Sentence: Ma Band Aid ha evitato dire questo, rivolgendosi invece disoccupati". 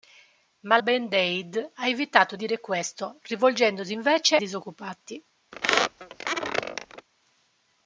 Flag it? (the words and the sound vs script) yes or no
yes